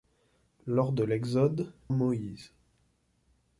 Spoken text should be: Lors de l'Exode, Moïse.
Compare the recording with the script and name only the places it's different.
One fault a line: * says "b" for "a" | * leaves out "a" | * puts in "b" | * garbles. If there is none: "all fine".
all fine